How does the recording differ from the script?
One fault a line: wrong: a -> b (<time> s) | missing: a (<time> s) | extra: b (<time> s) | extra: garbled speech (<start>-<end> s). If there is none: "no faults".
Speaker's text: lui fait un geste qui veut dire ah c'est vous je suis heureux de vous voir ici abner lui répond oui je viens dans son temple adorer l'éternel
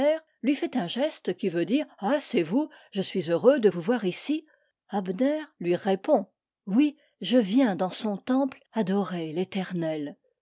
no faults